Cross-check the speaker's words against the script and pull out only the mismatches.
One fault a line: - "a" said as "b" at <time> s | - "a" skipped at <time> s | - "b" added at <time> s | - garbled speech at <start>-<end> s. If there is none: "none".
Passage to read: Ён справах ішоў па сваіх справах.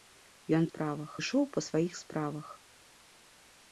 none